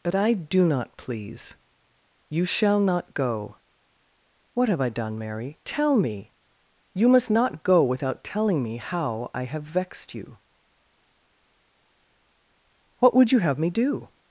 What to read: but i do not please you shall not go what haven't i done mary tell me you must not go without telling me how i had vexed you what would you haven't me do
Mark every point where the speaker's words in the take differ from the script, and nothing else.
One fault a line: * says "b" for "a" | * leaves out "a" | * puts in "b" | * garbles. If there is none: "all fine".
* says "have" for "haven't"
* says "have" for "had"
* says "have" for "haven't"